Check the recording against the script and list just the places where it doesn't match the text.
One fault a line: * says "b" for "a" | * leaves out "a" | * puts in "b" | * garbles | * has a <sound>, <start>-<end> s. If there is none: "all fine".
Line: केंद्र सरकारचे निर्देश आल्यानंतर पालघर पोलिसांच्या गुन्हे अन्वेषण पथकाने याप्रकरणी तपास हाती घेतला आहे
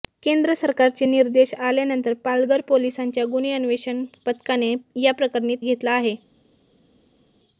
* leaves out "तपास हाती"